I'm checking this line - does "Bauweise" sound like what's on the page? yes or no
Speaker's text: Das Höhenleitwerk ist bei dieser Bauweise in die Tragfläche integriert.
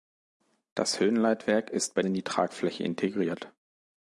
no